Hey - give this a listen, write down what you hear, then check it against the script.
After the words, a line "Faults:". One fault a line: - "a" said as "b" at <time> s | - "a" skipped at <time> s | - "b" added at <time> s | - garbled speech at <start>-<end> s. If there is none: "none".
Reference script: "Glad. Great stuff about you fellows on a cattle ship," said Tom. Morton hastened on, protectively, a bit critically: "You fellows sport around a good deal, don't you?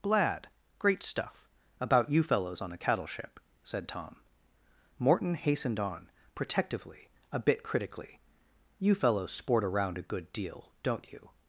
"Glad. Great stuff about you fellows on a cattle ship," said Tom. Morton hastened on, protectively, a bit critically: "You fellows sport around a good deal, don't you?
Faults:
none